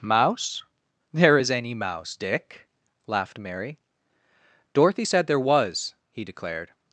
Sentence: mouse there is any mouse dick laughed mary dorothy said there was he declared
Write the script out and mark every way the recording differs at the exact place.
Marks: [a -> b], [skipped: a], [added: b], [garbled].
mouse there is any mouse dick laughed mary dorothy said there was he declared